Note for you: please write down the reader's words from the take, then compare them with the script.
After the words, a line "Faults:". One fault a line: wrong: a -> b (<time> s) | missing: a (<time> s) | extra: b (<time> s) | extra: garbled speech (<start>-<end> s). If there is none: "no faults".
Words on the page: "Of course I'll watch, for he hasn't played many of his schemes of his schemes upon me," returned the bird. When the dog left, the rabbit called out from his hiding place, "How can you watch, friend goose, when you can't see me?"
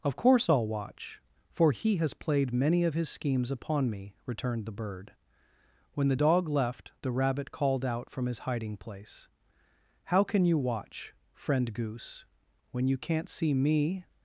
"Of course I'll watch, for he has played many of his schemes upon me," returned the bird. When the dog left, the rabbit called out from his hiding place, "How can you watch, friend goose, when you can't see me?"
Faults:
wrong: hasn't -> has (2.0 s)
missing: of his schemes (3.5 s)